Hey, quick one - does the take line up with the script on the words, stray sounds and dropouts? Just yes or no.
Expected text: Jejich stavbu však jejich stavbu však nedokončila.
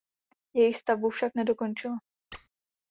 no